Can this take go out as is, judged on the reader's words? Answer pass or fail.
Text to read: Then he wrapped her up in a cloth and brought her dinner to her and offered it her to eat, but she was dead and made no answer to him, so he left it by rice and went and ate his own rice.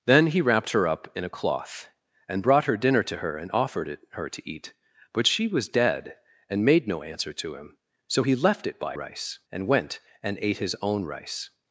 pass